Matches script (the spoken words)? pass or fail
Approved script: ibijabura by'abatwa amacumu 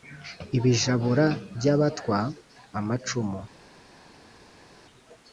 pass